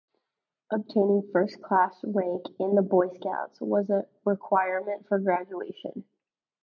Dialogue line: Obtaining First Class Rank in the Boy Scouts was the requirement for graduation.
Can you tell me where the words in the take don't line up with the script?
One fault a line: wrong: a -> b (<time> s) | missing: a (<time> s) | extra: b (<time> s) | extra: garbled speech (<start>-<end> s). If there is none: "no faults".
wrong: the -> a (3.9 s)